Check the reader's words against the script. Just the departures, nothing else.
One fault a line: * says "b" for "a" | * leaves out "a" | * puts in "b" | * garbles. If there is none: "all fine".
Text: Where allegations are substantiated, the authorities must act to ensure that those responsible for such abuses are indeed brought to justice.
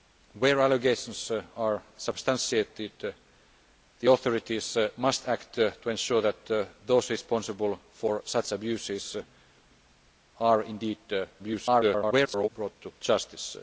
* garbles